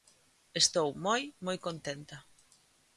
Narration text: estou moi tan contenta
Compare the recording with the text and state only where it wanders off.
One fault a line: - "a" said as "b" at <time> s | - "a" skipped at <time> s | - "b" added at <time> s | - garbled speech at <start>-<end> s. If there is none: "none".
- "tan" said as "moi" at 1.5 s